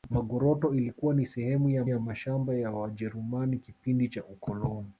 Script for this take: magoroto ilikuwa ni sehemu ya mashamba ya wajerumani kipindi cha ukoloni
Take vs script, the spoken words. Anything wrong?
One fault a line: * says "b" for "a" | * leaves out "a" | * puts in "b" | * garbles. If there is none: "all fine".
* puts in "ya"